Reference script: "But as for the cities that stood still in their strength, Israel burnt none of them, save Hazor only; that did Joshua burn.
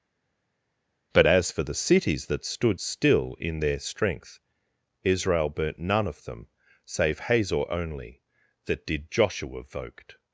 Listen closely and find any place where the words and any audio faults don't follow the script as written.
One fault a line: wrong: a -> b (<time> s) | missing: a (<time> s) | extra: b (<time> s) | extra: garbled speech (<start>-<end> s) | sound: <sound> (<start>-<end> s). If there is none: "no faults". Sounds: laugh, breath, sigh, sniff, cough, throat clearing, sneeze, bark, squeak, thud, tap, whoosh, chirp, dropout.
wrong: burn -> voked (9.6 s)